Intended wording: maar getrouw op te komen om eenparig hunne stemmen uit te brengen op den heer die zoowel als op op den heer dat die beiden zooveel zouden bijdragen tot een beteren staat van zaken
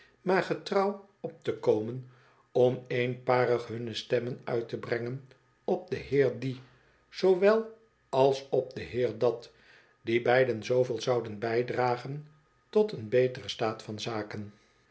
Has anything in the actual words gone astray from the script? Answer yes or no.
yes